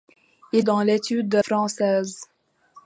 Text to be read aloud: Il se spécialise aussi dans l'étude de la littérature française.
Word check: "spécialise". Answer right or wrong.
wrong